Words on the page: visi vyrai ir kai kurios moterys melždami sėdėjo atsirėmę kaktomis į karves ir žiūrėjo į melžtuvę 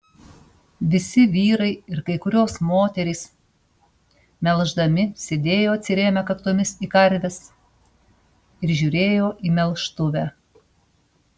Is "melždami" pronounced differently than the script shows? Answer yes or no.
no